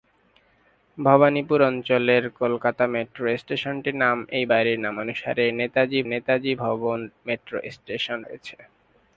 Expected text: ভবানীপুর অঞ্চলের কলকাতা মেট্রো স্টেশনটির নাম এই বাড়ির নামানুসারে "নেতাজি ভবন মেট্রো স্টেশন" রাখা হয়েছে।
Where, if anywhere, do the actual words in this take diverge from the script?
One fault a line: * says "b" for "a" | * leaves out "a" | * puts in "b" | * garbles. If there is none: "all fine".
* puts in "নেতাজি"
* leaves out "রাখা"